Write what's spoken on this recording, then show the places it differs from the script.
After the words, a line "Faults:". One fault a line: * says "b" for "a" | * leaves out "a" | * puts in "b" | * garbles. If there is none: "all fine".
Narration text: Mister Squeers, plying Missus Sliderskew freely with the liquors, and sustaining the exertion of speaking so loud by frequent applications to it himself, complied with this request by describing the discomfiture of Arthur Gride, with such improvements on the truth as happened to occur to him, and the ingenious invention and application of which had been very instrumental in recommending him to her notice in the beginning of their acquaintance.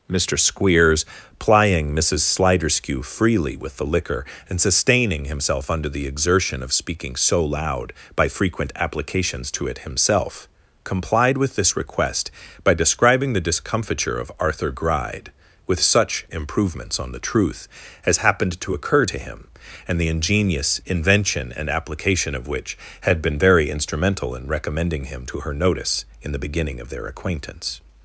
Mister Squeers, plying Missus Sliderskew freely with the liquor, and sustaining himself under the exertion of speaking so loud by frequent applications to it himself, complied with this request by describing the discomfiture of Arthur Gride, with such improvements on the truth as happened to occur to him, and the ingenious invention and application of which had been very instrumental in recommending him to her notice in the beginning of their acquaintance.
Faults:
* says "liquor" for "liquors"
* puts in "himself under"